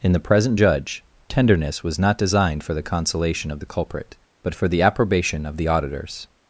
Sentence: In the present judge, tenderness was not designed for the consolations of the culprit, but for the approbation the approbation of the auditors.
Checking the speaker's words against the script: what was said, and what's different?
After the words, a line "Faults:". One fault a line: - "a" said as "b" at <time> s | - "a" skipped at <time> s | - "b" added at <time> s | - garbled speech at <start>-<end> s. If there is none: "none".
In the present judge, tenderness was not designed for the consolation of the culprit, but for the approbation of the auditors.
Faults:
- "consolations" said as "consolation" at 2.8 s
- "the approbation" skipped at 5.5 s